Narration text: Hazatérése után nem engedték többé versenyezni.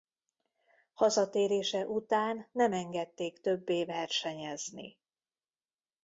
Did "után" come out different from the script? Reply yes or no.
no